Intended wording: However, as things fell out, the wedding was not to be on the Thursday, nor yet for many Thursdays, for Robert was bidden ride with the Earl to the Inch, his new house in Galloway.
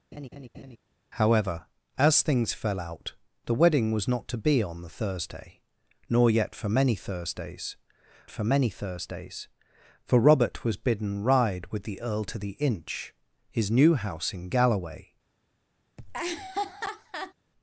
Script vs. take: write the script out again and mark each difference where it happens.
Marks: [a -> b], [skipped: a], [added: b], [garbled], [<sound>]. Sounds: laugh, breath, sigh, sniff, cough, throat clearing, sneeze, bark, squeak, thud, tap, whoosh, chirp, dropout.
[laugh] However, as things fell out, the wedding was not to be on the Thursday, nor yet for many Thursdays, for [added: many Thursdays for] Robert was bidden ride with the Earl to the Inch, his new house in Galloway. [laugh]